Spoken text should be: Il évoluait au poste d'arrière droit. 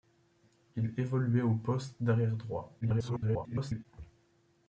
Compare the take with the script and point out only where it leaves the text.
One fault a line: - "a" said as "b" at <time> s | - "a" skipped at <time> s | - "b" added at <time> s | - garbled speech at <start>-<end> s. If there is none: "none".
- garbled speech at 2.8-3.9 s